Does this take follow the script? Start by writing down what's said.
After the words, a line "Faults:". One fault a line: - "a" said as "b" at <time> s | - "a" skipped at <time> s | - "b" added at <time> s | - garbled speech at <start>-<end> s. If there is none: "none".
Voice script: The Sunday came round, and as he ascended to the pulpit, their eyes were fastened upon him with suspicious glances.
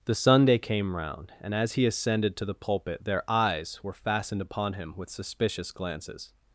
The Sunday came round, and as he ascended to the pulpit, their eyes were fastened upon him with suspicious glances.
Faults:
none